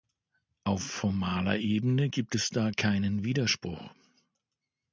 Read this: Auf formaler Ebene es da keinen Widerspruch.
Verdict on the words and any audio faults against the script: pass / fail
fail